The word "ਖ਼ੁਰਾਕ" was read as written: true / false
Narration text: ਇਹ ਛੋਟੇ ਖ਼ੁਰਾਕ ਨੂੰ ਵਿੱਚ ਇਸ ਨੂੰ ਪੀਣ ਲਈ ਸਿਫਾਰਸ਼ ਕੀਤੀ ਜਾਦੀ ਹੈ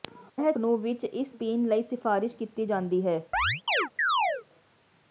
false